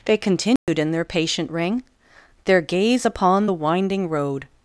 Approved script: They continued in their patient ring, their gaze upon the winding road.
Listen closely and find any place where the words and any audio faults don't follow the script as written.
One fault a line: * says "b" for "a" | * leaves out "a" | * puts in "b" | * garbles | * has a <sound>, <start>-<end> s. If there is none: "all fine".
* has a dropout, 0.6-0.7 s